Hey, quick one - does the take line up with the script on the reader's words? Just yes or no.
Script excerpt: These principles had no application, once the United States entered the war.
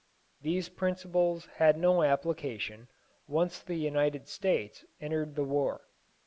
yes